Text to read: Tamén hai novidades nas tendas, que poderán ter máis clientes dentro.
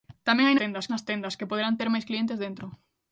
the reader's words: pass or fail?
fail